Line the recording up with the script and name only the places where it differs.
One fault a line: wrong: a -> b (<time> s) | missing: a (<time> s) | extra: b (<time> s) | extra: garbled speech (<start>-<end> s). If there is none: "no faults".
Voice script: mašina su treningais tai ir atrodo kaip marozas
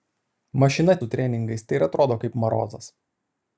no faults